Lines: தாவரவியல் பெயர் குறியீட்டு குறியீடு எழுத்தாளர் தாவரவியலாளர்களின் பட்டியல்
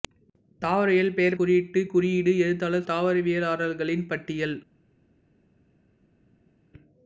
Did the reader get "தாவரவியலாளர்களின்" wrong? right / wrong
right